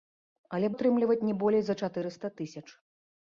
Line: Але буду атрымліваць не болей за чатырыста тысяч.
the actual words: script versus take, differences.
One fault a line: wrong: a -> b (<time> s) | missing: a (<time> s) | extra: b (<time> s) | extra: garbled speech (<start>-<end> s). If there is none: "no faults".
missing: буду (0.7 s)